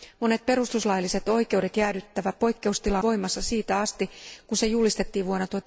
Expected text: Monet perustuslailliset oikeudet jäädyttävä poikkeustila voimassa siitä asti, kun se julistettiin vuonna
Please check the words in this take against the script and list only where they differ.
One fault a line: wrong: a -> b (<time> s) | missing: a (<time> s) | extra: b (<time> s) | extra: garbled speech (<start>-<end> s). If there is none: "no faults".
no faults